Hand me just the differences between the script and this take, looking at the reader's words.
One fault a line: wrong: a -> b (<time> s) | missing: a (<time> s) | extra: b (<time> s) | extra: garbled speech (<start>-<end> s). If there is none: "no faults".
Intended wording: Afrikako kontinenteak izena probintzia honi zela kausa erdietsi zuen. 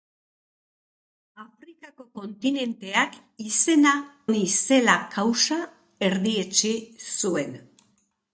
missing: probintzia (3.9 s)